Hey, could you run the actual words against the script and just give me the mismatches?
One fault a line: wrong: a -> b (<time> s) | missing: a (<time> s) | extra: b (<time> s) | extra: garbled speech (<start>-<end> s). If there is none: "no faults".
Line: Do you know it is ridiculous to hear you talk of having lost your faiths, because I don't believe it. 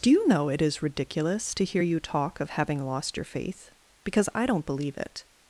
wrong: faiths -> faith (3.2 s)